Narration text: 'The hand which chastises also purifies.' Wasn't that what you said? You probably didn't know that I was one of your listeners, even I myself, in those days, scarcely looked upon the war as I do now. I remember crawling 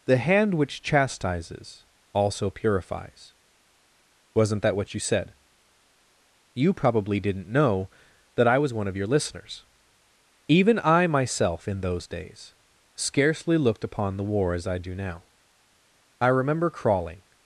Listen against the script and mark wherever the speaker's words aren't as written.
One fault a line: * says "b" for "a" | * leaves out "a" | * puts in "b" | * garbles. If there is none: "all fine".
all fine